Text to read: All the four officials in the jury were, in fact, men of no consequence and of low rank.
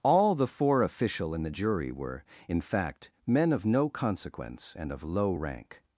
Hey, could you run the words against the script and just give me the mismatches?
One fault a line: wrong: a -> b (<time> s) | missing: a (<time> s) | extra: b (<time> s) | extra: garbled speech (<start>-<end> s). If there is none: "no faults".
wrong: officials -> official (0.8 s)